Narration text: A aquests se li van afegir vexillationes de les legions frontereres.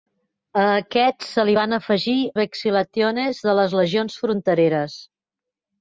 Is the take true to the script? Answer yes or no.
yes